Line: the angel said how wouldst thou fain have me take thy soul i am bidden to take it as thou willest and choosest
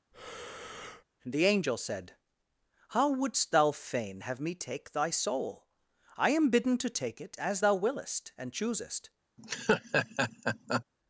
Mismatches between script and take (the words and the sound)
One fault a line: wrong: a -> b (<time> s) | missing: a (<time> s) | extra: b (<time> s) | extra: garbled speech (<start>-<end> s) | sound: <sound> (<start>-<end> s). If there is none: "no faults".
sound: breath (0.1-1.0 s)
sound: laugh (9.4-10.8 s)